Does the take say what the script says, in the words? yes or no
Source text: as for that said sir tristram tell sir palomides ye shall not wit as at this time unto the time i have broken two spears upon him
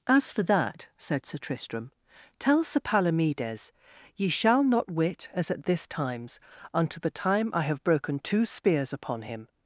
no